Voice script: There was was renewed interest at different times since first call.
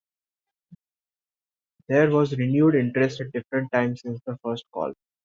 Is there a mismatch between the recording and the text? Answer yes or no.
yes